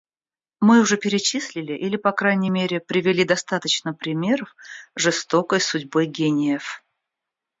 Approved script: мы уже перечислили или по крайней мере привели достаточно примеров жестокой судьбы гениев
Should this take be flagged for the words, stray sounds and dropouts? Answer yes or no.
no